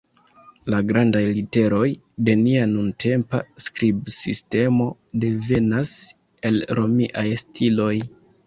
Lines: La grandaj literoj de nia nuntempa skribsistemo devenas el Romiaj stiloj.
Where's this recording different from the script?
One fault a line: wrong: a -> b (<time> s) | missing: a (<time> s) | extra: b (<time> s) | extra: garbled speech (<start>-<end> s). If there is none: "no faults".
no faults